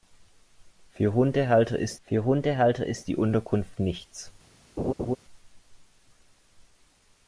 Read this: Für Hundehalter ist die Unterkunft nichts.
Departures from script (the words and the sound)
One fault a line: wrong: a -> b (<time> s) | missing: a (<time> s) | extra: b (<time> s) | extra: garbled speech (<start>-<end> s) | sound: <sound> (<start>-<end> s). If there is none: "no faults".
extra: für Hundehalter ist (2.0 s)
sound: laugh (4.8-5.2 s)